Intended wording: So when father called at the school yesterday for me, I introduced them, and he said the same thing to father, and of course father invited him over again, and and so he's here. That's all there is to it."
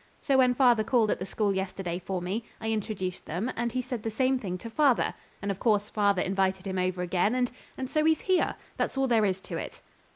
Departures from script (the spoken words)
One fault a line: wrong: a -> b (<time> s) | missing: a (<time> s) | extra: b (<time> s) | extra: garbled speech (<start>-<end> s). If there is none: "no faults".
no faults